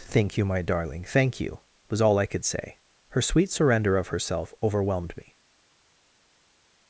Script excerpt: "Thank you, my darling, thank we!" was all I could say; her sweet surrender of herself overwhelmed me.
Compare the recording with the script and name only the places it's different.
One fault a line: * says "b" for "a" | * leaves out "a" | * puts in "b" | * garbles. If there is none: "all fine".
* says "you" for "we"